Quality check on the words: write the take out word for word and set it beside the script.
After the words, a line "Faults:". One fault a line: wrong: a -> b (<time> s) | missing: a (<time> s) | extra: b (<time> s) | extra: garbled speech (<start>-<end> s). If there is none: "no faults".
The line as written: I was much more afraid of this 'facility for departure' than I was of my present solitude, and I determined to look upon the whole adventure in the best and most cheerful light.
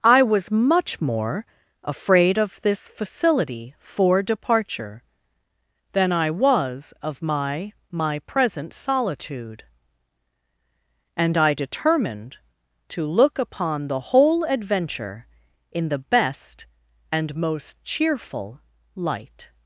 I was much more afraid of this 'facility for departure' than I was of my my present solitude, and I determined to look upon the whole adventure in the best and most cheerful light.
Faults:
extra: my (7.9 s)